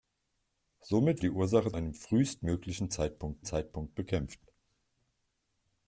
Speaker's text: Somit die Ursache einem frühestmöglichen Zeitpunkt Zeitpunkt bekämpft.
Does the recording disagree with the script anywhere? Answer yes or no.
no